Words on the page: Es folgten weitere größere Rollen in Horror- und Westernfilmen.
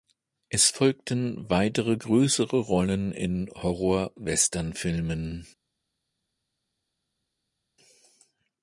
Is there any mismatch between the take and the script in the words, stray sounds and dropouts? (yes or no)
yes